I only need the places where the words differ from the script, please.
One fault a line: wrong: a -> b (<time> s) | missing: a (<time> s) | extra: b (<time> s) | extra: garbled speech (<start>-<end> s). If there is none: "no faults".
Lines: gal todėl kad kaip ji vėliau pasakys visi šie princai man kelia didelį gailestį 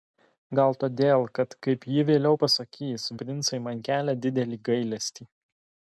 missing: visi šie (3.1 s)